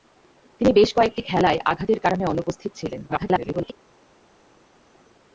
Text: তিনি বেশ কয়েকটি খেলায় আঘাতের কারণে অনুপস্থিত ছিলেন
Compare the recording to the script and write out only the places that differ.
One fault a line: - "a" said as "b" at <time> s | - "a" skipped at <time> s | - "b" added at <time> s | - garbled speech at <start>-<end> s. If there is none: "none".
- garbled speech at 3.1-3.7 s